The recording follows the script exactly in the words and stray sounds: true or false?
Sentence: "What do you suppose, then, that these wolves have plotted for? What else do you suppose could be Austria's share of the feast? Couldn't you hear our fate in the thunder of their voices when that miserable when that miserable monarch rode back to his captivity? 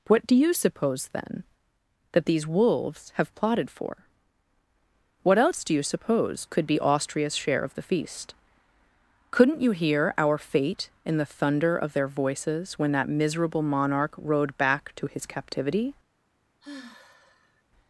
false